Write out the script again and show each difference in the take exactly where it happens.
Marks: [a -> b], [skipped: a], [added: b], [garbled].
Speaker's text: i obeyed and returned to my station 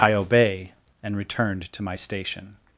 i [obeyed -> obey] and returned to my station